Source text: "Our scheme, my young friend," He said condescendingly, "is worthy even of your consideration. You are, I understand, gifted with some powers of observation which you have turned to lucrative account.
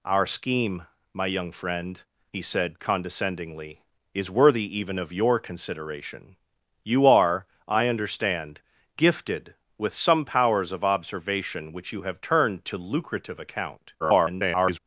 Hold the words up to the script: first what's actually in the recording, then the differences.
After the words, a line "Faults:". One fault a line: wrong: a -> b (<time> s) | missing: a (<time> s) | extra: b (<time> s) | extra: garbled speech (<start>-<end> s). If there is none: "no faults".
"Our scheme, my young friend," He said condescendingly, "is worthy even of your consideration. You are, I understand, gifted with some powers of observation which you have turned to lucrative account. [garbled]
Faults:
extra: garbled speech (14.0-14.8 s)